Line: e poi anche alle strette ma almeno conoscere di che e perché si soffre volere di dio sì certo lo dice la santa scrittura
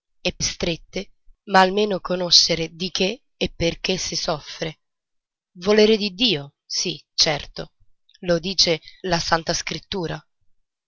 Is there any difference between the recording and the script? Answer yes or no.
yes